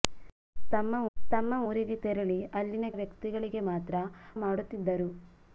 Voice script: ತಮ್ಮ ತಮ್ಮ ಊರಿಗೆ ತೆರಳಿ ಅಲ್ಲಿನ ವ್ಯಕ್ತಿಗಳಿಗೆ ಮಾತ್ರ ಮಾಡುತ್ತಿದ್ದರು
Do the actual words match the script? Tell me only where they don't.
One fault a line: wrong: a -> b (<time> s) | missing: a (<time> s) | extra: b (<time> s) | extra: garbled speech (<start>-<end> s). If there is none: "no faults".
no faults